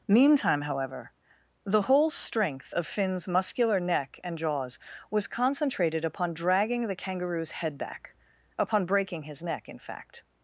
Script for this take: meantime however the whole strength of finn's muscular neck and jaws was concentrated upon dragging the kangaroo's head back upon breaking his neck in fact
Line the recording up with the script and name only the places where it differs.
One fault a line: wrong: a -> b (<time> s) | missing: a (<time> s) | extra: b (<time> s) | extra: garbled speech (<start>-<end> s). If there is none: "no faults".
no faults